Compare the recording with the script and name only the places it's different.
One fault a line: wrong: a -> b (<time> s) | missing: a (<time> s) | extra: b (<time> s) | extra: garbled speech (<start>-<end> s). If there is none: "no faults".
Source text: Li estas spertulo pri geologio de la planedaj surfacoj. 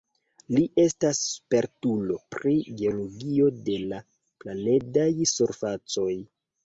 no faults